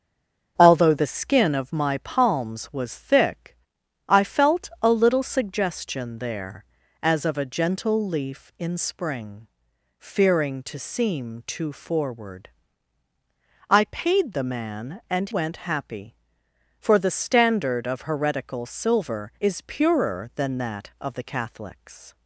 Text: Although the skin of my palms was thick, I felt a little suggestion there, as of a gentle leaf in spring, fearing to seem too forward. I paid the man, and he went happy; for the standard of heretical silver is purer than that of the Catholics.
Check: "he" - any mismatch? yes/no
yes